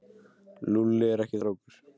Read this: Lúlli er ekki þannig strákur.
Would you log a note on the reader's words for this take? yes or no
yes